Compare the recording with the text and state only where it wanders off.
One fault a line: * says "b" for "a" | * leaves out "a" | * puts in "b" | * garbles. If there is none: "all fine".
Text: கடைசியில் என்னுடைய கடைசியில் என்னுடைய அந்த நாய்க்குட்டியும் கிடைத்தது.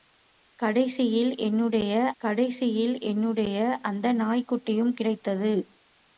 all fine